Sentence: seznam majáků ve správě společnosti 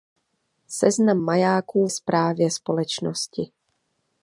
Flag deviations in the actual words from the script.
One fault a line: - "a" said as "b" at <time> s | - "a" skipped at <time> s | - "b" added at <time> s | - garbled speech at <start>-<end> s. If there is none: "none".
- "ve" skipped at 1.9 s